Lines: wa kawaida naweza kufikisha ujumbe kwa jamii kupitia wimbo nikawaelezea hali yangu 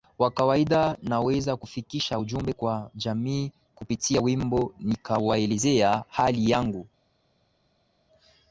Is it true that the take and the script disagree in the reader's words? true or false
false